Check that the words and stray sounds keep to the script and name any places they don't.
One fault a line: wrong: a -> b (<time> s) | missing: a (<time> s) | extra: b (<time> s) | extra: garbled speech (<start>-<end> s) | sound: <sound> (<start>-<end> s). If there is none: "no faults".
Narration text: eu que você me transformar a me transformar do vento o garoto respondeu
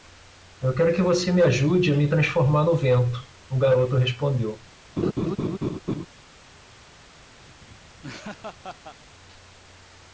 extra: quero (0.7 s)
wrong: transformar -> ajude (1.4 s)
wrong: do -> no (2.6 s)
sound: laugh (5.0-6.1 s)
sound: laugh (7.4-9.0 s)